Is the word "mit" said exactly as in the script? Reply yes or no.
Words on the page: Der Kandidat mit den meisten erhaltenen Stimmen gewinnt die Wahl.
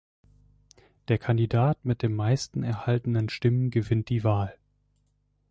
yes